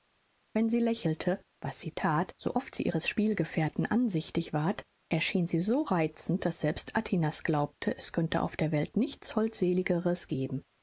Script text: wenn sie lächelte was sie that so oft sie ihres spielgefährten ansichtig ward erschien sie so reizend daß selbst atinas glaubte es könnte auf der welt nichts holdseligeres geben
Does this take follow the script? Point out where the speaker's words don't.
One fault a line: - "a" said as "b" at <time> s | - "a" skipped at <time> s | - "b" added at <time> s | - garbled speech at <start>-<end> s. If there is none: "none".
none